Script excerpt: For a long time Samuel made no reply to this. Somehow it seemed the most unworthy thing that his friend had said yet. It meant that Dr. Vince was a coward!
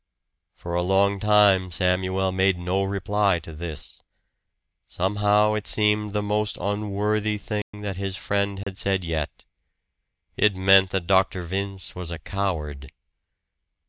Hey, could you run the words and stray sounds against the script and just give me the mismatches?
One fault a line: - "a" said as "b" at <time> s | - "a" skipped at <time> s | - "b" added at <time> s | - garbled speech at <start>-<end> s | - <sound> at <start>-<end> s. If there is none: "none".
- dropout at 7.6-7.7 s
- dropout at 8.6-8.7 s